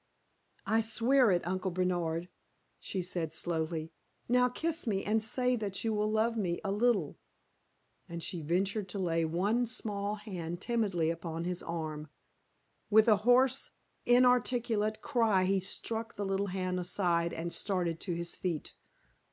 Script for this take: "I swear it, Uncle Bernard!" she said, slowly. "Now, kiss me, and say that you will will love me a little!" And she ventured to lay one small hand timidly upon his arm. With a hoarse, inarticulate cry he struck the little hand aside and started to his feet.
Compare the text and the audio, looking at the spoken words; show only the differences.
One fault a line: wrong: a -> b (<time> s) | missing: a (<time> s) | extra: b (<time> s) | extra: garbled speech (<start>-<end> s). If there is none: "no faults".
missing: will (6.1 s)